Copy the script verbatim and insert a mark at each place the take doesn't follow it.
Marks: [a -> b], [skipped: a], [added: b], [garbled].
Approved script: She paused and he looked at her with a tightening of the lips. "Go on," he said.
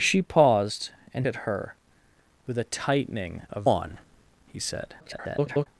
She paused and [skipped: he looked] at her with a tightening of [skipped: the lips. "Go] on," he said. [garbled]